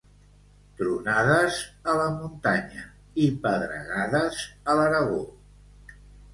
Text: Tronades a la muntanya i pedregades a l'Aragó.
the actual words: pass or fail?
pass